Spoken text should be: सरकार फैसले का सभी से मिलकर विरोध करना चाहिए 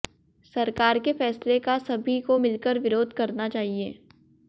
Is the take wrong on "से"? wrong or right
wrong